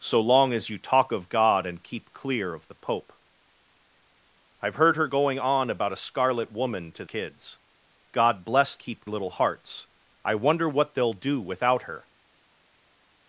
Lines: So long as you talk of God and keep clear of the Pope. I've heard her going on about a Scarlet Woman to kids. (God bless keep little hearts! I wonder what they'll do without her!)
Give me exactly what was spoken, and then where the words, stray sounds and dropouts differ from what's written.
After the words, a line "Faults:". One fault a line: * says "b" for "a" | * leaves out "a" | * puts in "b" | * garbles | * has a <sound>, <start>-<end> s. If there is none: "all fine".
So long as you talk of God and keep clear of the Pope. I've heard her going on about a Scarlet Woman to kids. (God bless keep little hearts! I wonder what they'll do without her!)
Faults:
all fine